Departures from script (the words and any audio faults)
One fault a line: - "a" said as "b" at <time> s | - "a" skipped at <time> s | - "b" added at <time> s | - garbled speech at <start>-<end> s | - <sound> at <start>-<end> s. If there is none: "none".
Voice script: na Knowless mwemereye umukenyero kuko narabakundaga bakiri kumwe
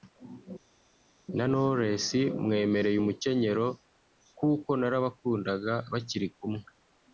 none